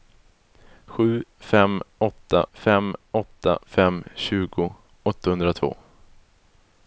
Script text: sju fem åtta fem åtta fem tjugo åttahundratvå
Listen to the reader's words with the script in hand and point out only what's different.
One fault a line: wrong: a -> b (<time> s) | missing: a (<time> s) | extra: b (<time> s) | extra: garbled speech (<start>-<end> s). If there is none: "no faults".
no faults